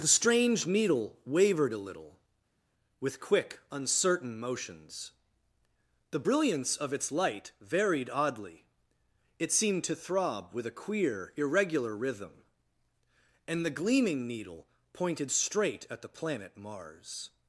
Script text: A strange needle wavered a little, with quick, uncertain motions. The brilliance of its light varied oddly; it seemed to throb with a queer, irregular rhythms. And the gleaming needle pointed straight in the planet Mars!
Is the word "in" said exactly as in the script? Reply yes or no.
no